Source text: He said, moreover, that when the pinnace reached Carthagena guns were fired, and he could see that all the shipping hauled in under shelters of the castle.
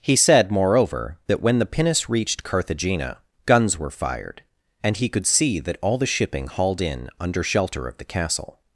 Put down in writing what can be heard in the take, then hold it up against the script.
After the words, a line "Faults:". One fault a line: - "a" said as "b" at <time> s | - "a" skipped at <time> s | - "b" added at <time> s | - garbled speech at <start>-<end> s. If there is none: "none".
He said, moreover, that when the pinnace reached Carthagena guns were fired, and he could see that all the shipping hauled in under shelter of the castle.
Faults:
- "shelters" said as "shelter" at 7.4 s